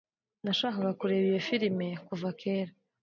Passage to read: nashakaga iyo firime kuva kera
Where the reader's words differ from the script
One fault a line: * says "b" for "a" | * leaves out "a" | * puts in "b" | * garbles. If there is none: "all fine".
* puts in "kureba"